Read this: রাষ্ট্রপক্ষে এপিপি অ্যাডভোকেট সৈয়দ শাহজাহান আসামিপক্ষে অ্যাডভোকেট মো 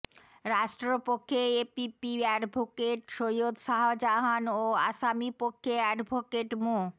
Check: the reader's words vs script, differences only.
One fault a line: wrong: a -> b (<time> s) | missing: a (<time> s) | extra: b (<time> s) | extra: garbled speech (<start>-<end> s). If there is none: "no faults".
extra: ও (4.5 s)